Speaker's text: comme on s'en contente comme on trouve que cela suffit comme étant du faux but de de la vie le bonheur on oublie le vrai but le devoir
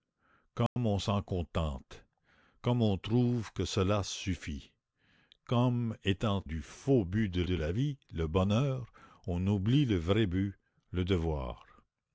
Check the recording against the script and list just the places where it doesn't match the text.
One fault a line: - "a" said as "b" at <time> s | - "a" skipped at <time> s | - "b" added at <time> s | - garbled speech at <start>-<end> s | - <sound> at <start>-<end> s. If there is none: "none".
- dropout at 0.7-0.8 s